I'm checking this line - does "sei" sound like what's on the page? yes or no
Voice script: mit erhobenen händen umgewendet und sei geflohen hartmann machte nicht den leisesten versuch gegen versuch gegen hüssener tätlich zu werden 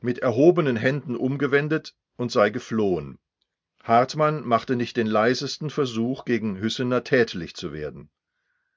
yes